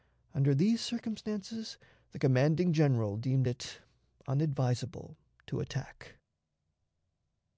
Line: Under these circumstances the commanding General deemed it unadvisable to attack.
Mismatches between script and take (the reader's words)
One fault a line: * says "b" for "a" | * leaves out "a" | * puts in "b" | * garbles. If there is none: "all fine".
all fine